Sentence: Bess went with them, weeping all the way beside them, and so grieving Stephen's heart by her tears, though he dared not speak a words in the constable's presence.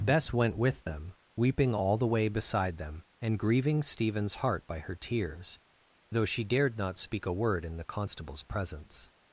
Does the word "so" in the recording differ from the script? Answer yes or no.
yes